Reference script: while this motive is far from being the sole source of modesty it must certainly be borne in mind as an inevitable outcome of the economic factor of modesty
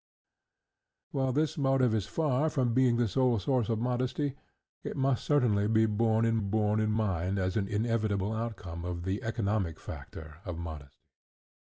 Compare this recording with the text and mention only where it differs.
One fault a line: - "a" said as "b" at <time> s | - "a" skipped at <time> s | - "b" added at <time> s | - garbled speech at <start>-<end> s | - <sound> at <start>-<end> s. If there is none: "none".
- "borne in" added at 6.4 s